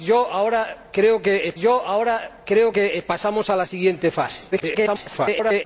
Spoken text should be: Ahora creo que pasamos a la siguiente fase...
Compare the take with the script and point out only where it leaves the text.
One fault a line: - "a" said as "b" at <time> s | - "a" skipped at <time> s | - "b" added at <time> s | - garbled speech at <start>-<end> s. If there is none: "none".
- "ahora creo que" added at 1.6 s
- garbled speech at 4.5-5.6 s